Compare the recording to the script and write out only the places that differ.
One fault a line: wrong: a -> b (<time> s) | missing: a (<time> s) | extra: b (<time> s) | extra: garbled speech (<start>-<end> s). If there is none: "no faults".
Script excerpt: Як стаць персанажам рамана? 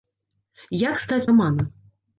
missing: персанажам (1.2 s)